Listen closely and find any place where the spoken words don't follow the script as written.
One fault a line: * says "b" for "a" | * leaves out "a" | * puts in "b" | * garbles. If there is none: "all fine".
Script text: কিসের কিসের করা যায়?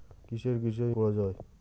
all fine